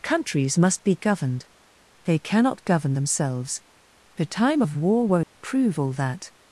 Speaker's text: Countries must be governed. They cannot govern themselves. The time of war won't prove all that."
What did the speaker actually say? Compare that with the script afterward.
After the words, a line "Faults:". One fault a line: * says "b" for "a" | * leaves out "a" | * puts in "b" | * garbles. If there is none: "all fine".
Countries must be governed. They cannot govern themselves. The time of war won't prove all that."
Faults:
all fine